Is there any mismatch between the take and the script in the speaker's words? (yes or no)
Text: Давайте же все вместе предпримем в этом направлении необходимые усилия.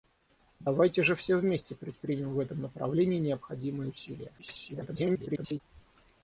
yes